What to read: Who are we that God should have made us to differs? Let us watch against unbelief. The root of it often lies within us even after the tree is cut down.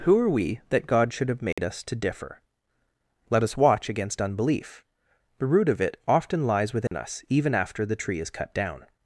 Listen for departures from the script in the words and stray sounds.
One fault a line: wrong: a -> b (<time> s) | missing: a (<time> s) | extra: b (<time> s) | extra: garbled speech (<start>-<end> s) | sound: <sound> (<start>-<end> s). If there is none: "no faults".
sound: dropout (1.5-1.6 s)
wrong: differs -> differ (1.9 s)
sound: dropout (6.9-6.9 s)